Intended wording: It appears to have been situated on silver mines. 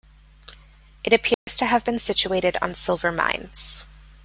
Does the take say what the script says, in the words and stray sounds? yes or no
no